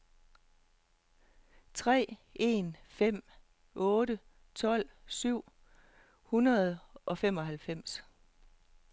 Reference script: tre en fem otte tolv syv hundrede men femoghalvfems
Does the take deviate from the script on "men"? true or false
true